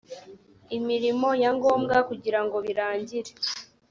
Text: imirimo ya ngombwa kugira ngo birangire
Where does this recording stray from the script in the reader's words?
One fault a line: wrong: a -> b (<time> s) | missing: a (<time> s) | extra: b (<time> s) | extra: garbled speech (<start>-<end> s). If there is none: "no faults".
no faults